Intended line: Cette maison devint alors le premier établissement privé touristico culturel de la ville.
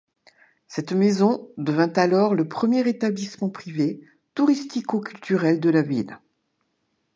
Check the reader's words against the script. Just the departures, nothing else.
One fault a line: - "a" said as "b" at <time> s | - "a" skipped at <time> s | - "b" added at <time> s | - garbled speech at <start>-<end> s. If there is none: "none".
none